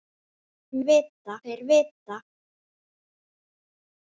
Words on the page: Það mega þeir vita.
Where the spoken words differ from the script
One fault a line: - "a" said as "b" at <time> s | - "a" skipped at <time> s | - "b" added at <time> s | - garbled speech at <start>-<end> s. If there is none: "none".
- "mega" said as "vita" at 0.9 s